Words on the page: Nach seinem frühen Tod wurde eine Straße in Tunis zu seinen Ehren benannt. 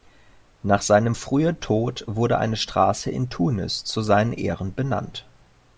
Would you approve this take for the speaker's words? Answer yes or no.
yes